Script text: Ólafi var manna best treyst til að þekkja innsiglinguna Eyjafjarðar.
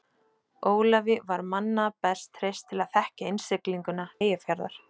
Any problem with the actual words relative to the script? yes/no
no